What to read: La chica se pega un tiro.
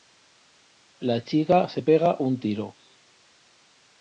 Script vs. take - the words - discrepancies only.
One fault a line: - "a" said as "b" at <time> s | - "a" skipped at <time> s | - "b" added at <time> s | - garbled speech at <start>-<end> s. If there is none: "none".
none